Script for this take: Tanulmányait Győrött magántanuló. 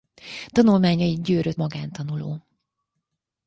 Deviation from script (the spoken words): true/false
false